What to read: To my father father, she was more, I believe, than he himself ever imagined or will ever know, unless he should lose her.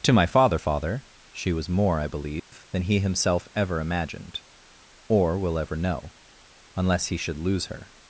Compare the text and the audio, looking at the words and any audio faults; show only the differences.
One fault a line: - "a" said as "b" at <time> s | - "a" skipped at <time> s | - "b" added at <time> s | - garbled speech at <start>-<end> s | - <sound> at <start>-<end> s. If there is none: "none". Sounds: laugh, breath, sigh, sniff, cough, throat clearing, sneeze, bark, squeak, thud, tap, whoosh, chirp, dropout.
- dropout at 2.4-2.5 s